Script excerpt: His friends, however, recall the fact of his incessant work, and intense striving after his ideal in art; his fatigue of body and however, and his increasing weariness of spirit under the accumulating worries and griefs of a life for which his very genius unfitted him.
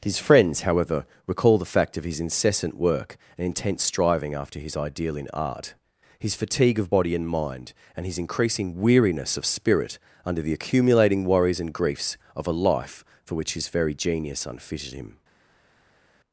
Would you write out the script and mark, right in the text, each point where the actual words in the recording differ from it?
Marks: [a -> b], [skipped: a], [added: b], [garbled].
His friends, however, recall the fact of his incessant work, and intense striving after his ideal in art; his fatigue of body and [however, -> mind] and his increasing weariness of spirit under the accumulating worries and griefs of a life for which his very genius unfitted him.